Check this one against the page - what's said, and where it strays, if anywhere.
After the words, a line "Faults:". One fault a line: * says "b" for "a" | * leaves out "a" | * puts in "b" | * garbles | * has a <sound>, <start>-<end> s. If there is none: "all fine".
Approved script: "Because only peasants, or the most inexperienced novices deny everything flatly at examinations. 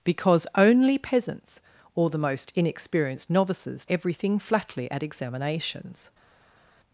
"Because only peasants, or the most inexperienced novices everything flatly at examinations.
Faults:
* leaves out "deny"